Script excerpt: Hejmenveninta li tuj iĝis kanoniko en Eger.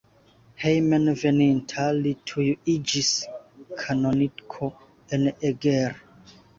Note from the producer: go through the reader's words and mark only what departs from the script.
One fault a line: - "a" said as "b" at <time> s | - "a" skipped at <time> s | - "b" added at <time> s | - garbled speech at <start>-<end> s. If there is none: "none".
none